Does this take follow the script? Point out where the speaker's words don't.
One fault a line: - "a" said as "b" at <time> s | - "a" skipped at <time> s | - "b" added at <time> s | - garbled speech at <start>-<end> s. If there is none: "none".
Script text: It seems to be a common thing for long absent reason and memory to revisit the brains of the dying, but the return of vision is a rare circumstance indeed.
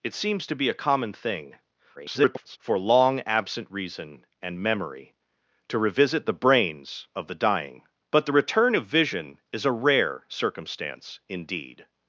- garbled speech at 2.0-2.6 s